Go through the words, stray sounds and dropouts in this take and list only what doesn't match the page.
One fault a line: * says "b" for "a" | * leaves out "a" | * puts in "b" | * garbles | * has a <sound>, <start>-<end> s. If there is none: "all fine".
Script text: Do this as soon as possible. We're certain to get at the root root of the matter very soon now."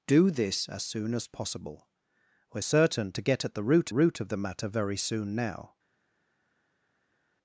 all fine